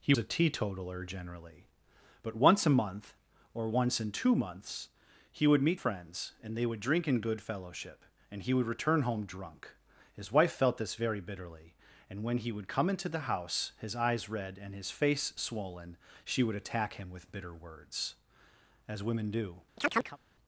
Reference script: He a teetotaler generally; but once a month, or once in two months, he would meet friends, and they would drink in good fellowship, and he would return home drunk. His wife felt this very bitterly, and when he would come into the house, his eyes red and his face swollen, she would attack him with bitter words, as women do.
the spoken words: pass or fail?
pass